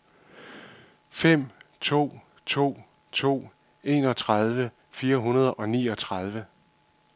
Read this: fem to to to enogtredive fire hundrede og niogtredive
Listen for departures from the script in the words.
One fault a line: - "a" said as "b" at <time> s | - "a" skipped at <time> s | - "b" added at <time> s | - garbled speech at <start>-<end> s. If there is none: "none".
none